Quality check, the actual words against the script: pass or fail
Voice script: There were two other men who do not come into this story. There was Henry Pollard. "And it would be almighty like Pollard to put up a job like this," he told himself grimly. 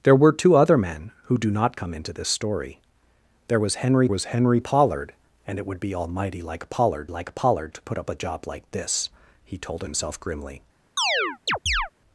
fail